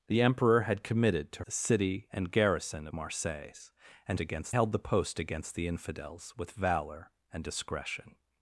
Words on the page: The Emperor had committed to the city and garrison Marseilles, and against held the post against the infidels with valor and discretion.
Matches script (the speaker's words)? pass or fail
pass